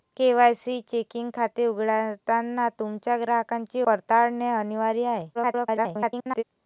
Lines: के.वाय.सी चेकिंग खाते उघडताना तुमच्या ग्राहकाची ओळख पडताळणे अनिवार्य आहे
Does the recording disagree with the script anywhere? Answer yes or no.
yes